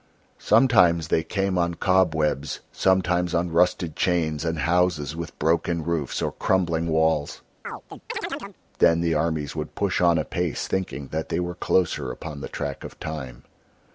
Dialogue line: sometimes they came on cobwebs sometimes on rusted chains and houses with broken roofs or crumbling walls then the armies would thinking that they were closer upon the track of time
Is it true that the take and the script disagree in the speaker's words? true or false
true